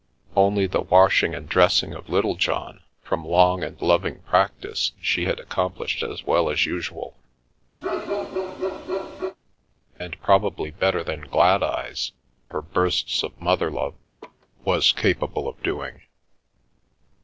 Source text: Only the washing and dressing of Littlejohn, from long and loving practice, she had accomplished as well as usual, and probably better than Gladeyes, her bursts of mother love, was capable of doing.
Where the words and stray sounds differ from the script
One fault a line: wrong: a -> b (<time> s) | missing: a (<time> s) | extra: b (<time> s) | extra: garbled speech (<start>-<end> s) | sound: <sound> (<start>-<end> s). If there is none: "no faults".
sound: bark (7.8-9.4 s)
sound: laugh (14.2-14.5 s)